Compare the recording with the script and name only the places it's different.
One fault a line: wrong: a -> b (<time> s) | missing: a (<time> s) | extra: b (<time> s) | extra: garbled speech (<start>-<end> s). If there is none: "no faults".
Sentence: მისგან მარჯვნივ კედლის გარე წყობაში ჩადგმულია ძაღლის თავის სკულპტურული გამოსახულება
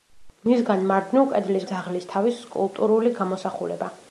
missing: გარე წყობაში ჩადგმულია (1.7 s)